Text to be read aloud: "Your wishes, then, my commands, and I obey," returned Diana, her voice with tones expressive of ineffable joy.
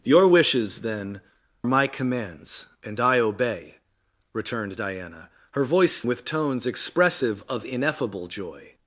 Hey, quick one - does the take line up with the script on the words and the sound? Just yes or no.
yes